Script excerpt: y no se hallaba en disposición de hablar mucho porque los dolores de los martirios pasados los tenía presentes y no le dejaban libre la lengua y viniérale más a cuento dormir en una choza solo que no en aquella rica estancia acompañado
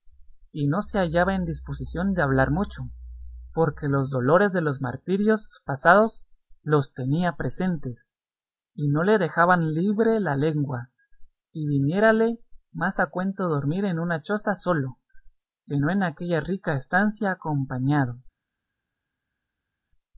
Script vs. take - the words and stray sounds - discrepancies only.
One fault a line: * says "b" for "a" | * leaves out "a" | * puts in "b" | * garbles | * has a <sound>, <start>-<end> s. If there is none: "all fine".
all fine